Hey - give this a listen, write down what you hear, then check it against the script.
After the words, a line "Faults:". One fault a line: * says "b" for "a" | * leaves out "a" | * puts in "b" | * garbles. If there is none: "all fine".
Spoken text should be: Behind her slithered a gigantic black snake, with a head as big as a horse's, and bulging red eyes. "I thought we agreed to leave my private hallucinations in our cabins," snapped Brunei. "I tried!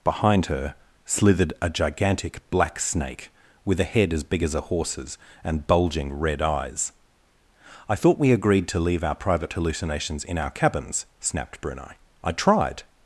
Behind her slithered a gigantic black snake, with a head as big as a horse's, and bulging red eyes. "I thought we agreed to leave our private hallucinations in our cabins," snapped Brunei. "I tried!
Faults:
* says "our" for "my"